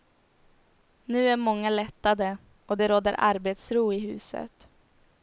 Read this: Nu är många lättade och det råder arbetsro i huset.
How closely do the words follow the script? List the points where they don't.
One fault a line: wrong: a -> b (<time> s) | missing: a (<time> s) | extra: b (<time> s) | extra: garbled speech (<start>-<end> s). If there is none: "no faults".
no faults